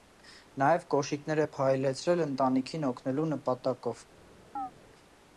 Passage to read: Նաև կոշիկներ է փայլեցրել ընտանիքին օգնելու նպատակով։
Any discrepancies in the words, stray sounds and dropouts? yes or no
yes